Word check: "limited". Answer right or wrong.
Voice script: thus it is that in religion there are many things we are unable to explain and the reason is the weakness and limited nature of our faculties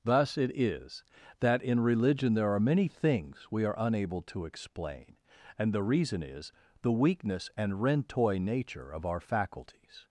wrong